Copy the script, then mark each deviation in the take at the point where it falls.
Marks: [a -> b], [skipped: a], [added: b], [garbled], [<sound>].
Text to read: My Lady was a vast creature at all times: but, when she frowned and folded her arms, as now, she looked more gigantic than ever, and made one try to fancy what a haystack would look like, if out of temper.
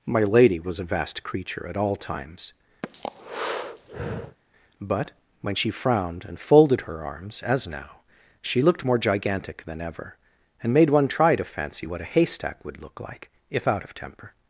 My Lady was a vast creature at all times: [breath] but, when she frowned and folded her arms, as now, she looked more gigantic than ever, and made one try to fancy what a haystack would look like, if out of temper.